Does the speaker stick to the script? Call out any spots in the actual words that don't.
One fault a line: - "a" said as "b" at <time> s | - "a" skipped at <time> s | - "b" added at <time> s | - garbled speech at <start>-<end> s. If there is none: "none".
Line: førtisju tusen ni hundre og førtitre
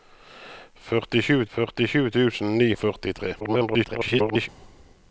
- "førtisju" added at 1.5 s
- "hundre" skipped at 2.7 s
- garbled speech at 3.4-4.5 s